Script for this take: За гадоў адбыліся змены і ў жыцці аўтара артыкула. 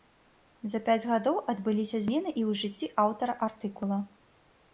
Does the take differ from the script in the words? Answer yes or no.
yes